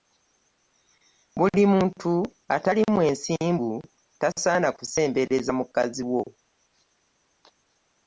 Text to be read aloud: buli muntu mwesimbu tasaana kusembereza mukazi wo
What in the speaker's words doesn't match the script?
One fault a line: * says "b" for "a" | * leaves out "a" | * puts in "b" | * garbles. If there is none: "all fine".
* puts in "atali"